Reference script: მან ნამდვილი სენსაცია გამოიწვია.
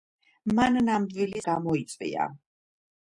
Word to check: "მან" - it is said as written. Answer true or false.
true